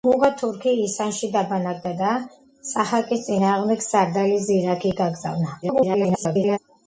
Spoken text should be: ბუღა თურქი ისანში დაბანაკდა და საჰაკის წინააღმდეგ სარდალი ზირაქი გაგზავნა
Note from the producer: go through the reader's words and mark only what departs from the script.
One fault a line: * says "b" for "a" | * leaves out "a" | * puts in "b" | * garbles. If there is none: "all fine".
* garbles